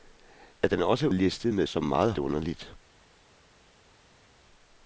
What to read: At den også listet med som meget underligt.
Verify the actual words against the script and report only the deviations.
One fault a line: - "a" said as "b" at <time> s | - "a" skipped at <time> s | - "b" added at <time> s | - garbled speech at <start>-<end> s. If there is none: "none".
none